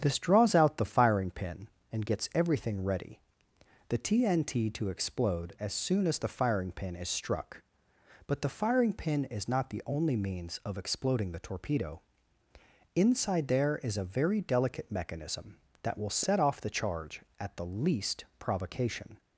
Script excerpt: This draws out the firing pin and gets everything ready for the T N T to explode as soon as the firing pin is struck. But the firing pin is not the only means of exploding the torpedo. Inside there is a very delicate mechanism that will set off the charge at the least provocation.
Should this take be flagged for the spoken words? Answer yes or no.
yes